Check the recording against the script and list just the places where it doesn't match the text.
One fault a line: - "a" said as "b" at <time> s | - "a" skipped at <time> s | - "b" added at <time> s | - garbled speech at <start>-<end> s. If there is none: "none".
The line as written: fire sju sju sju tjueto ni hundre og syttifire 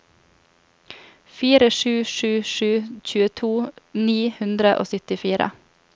none